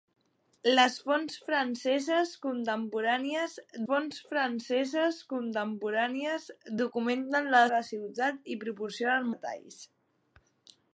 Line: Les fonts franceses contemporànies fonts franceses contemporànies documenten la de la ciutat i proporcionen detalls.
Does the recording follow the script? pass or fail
pass